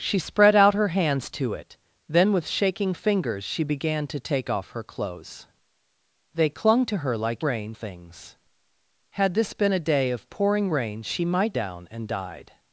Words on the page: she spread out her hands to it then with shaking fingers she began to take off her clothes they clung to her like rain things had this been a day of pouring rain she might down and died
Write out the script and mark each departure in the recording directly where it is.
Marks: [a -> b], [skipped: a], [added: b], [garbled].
she spread out her hands to it then with shaking fingers she began to take off her clothes they clung to her like rain things had this been a day of pouring rain she might down and died